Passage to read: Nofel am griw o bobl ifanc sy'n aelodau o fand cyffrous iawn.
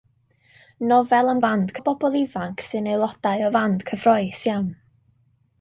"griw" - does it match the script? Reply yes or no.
no